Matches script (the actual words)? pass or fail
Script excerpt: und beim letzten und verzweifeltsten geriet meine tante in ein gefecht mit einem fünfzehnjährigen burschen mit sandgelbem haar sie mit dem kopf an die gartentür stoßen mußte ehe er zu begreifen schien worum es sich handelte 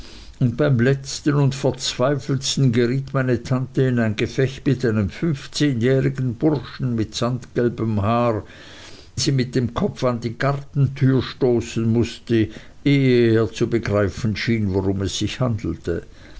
pass